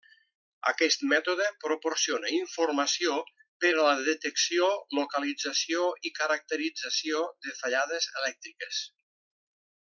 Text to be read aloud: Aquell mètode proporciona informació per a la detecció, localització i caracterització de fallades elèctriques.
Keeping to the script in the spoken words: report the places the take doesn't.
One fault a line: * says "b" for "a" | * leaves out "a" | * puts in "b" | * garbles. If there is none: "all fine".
* says "Aquest" for "Aquell"